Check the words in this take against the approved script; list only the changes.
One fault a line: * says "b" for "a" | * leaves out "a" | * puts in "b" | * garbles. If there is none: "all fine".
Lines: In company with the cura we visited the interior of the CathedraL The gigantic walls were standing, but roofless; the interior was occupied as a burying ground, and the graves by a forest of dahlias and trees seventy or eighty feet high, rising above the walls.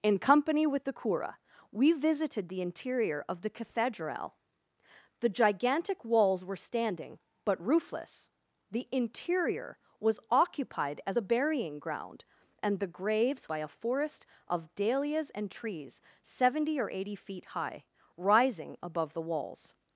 all fine